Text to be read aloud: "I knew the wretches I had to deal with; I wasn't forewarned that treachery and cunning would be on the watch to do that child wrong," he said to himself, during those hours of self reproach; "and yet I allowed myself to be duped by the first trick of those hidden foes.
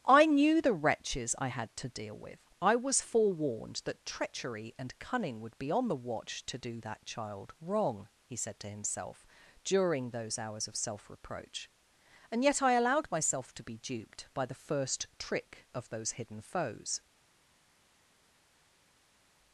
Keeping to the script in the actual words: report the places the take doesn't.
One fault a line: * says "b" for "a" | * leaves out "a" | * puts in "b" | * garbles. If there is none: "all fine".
* says "was" for "wasn't"